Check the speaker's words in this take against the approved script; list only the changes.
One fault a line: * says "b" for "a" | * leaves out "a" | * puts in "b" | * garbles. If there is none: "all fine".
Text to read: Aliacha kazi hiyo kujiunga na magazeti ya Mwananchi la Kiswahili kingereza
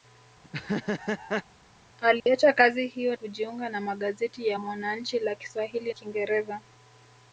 all fine